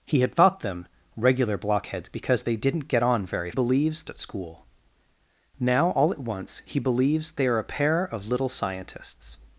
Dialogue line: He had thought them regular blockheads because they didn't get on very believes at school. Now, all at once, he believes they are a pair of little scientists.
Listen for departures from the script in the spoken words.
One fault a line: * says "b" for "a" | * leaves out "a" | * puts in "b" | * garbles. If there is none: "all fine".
all fine